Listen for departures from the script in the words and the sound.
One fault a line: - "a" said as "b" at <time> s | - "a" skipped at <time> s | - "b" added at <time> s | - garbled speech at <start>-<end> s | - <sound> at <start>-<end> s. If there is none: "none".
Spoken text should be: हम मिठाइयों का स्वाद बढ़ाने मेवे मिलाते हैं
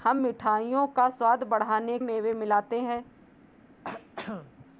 - throat clearing at 3.8-4.5 s